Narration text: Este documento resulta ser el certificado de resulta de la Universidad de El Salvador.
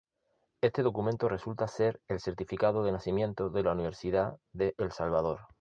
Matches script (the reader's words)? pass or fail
fail